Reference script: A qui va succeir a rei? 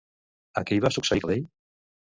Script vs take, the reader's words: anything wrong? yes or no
no